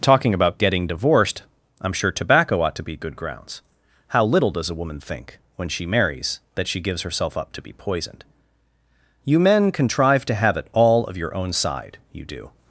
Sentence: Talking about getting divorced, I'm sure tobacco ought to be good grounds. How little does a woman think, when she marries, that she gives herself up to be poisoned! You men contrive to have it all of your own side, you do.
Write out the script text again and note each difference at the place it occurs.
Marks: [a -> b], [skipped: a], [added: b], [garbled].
Talking about getting divorced, I'm sure tobacco ought to be good grounds. How little does a woman think, when she marries, that she gives herself up to be poisoned! You men contrive to have it all of your own side, you do.